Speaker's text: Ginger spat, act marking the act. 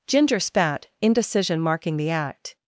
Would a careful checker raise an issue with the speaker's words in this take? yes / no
yes